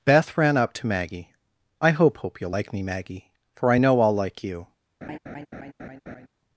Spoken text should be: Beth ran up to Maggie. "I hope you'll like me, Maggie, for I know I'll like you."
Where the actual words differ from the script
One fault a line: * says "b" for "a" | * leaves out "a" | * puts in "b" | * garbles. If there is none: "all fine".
* puts in "hope"